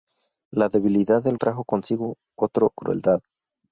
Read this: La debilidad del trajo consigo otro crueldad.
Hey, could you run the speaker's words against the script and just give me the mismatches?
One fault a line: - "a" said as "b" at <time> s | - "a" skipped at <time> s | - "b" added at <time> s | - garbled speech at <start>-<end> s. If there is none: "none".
none